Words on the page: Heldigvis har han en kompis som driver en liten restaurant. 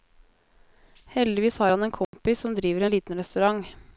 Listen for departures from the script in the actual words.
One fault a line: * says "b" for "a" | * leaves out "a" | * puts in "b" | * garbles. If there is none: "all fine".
all fine